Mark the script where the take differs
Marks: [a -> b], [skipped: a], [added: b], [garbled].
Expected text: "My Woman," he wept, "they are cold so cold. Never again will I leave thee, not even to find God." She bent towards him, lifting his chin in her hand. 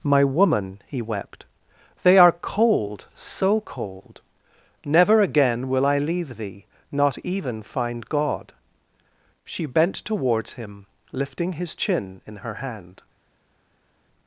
"My Woman," he wept, "they are cold so cold. Never again will I leave thee, not even [skipped: to] find God." She bent towards him, lifting his chin in her hand.